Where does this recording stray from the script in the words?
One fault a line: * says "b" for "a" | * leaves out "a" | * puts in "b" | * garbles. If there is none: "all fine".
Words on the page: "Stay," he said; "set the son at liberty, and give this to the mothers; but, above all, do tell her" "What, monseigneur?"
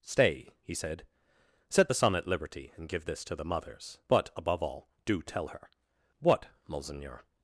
all fine